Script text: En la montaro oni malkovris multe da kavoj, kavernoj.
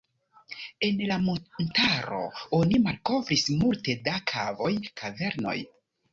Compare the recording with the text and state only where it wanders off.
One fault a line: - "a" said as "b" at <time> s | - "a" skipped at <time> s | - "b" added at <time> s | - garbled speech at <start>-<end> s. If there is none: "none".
none